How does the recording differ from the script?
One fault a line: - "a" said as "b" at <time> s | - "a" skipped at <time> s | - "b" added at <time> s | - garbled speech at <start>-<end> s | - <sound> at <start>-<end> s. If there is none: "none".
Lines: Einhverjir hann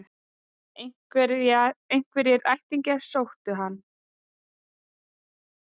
- "ættingjar sóttu" added at 2.5 s